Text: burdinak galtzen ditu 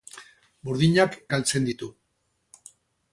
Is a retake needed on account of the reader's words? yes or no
no